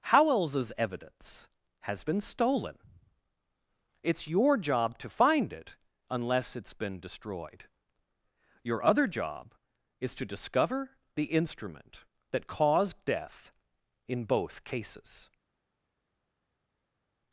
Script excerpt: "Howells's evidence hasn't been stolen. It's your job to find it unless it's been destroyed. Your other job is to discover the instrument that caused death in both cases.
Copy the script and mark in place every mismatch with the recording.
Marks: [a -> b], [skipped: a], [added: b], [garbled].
"Howells's evidence [hasn't -> has] been stolen. It's your job to find it unless it's been destroyed. Your other job is to discover the instrument that caused death in both cases.